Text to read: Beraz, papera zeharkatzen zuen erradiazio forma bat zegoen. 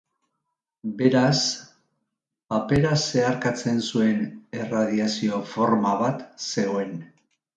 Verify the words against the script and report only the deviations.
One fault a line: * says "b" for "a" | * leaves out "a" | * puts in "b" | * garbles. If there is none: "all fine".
all fine